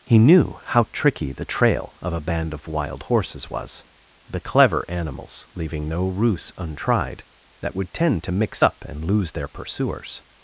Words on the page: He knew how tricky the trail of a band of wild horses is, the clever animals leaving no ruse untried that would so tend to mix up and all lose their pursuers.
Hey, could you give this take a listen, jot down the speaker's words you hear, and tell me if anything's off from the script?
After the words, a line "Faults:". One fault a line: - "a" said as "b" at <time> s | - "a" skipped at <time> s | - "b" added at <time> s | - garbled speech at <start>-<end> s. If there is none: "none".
He knew how tricky the trail of a band of wild horses was, the clever animals leaving no ruse untried that would tend to mix up and lose their pursuers.
Faults:
- "is" said as "was" at 3.5 s
- "so" skipped at 7.9 s
- "all" skipped at 9.0 s